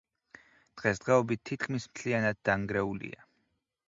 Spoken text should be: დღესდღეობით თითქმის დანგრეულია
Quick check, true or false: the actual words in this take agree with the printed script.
false